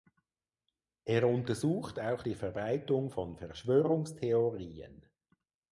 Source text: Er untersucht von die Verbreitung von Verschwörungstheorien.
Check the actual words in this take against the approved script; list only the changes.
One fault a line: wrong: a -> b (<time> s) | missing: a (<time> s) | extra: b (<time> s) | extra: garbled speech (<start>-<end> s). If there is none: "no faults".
wrong: von -> auch (2.0 s)